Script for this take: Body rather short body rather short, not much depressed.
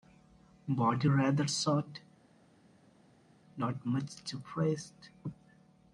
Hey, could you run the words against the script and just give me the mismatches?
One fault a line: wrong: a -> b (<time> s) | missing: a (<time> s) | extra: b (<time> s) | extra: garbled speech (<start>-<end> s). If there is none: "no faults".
missing: body rather short (2.0 s)